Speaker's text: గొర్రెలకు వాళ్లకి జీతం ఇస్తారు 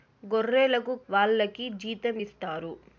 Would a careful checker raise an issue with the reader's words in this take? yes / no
no